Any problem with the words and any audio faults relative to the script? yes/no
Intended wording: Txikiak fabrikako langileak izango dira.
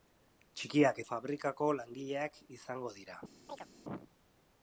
yes